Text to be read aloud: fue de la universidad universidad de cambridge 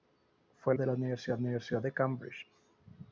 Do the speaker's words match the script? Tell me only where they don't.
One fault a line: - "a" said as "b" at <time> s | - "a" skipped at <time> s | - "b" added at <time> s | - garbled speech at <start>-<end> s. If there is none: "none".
none